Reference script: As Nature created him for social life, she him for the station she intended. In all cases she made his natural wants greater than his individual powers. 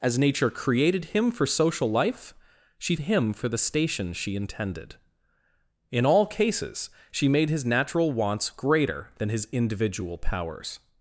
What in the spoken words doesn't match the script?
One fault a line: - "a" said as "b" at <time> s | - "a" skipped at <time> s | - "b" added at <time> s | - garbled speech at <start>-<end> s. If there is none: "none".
none